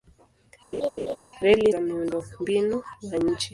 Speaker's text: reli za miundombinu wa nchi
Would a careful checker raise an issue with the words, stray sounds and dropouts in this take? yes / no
yes